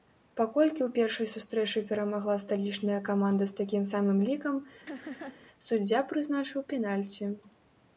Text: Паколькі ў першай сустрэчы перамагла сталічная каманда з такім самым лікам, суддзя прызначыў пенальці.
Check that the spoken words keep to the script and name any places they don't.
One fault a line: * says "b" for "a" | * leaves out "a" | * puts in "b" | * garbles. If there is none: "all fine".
all fine